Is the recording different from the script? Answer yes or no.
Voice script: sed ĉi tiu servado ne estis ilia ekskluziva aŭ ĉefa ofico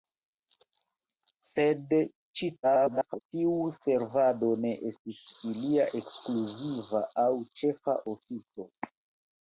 yes